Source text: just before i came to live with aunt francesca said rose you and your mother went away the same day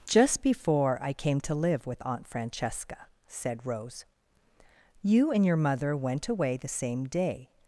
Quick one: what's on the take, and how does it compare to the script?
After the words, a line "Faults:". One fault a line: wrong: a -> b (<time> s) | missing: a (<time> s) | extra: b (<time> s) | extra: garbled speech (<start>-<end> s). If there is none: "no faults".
just before i came to live with aunt francesca said rose you and your mother went away the same day
Faults:
no faults